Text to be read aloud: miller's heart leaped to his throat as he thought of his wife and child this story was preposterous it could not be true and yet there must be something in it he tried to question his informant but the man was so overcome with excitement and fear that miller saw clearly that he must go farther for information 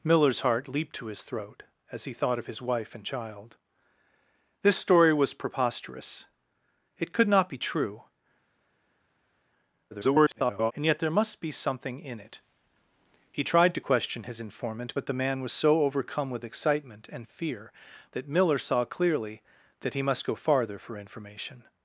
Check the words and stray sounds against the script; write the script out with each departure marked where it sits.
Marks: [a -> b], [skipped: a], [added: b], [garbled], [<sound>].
miller's heart leaped to his throat as he thought of his wife and child this story was preposterous it could not be true [garbled] and yet there must be something in it he tried to question his informant but the man was so overcome with excitement and fear that miller saw clearly that he must go farther for information